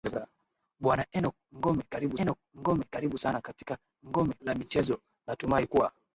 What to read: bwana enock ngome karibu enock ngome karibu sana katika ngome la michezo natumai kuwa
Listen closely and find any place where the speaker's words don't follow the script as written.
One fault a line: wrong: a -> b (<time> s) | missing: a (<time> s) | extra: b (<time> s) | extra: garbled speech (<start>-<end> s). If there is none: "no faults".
no faults